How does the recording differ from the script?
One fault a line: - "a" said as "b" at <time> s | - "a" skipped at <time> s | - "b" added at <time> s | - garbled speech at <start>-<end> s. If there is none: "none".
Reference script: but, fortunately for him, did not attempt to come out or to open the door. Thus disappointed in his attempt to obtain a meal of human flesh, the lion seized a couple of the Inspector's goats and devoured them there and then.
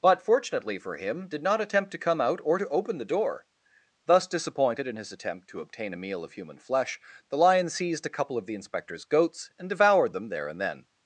none